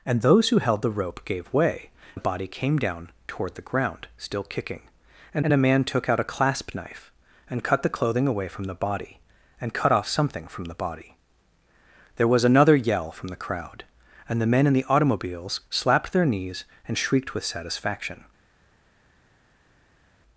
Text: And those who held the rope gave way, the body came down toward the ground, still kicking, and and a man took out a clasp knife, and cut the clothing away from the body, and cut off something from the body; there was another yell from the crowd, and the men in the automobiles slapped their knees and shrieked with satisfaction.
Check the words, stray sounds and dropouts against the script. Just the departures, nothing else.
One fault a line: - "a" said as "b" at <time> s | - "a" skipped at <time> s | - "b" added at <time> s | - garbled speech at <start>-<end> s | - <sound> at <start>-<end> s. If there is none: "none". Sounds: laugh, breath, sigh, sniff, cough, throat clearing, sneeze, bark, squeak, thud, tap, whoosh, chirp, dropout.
none